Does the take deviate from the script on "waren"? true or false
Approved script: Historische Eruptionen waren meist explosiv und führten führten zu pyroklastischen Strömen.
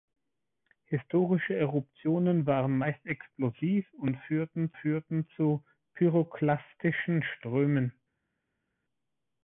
false